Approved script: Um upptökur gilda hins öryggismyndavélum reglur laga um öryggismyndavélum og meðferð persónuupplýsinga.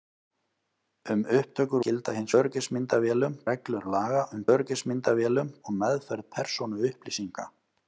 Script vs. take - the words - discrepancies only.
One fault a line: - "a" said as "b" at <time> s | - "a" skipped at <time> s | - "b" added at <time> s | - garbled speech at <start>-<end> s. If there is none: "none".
none